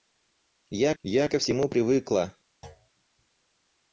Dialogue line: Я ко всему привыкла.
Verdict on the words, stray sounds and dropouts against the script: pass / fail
fail